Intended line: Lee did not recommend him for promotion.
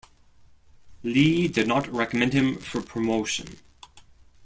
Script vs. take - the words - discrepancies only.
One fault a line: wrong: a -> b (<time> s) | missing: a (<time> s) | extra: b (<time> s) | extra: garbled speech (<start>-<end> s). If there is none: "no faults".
no faults